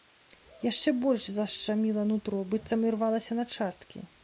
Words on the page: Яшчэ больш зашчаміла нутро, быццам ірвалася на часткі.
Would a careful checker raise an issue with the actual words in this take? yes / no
no